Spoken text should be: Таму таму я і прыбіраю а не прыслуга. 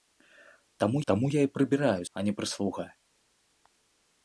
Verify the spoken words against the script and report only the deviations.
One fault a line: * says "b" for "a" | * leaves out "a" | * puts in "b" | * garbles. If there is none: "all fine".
all fine